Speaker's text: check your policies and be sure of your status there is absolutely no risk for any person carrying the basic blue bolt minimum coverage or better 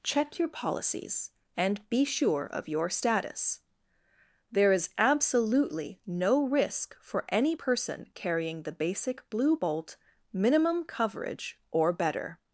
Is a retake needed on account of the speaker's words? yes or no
no